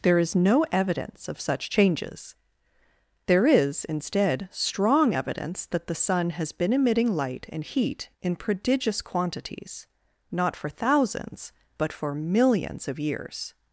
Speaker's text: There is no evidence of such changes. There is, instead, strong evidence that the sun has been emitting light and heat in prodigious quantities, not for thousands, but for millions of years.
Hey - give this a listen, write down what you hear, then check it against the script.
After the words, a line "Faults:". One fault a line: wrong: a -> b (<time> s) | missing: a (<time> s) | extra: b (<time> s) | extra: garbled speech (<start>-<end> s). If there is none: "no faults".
There is no evidence of such changes. There is, instead, strong evidence that the sun has been emitting light and heat in prodigious quantities, not for thousands, but for millions of years.
Faults:
no faults